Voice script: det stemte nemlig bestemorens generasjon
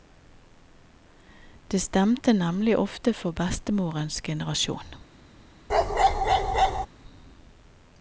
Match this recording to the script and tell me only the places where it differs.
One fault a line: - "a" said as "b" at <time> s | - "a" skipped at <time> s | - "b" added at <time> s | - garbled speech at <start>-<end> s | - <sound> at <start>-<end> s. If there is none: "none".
- "ofte for" added at 2.8 s
- bark at 5.7-6.9 s